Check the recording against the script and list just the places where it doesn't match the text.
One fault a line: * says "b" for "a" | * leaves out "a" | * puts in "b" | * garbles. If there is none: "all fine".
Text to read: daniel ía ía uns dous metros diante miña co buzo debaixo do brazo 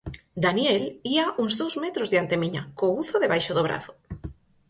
* leaves out "ía"